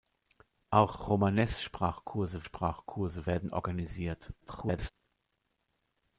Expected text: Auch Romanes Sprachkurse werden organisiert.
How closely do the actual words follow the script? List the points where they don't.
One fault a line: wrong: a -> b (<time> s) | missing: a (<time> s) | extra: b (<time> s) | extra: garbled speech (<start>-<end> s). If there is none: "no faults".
extra: Sprachkurse (2.4 s)
extra: garbled speech (4.4-4.9 s)